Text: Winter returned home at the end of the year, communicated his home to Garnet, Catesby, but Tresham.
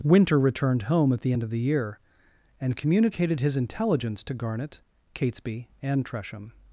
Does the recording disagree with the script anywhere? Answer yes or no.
yes